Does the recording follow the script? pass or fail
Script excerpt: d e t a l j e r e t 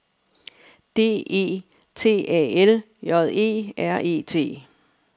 pass